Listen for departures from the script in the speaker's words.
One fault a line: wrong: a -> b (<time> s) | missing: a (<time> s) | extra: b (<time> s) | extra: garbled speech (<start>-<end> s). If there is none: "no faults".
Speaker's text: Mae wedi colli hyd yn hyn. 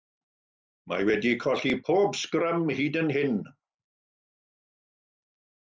extra: pob sgrym (1.9 s)